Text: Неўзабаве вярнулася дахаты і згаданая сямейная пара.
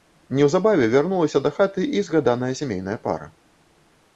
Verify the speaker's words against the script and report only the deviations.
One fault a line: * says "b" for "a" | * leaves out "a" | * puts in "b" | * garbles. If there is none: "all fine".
all fine